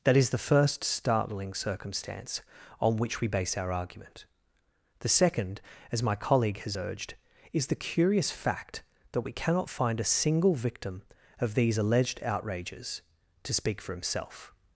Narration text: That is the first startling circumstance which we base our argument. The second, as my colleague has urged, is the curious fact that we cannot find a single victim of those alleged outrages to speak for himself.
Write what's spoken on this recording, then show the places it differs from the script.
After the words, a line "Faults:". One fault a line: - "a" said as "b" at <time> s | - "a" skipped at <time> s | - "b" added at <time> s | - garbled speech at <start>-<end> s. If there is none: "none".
That is the first startling circumstance on which we base our argument. The second, as my colleague has urged, is the curious fact that we cannot find a single victim of these alleged outrages to speak for himself.
Faults:
- "on" added at 2.8 s
- "those" said as "these" at 11.5 s